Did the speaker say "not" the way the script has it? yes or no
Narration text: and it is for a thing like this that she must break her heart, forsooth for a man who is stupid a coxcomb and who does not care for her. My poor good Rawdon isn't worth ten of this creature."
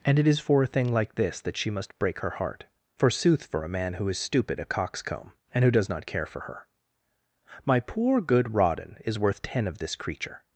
yes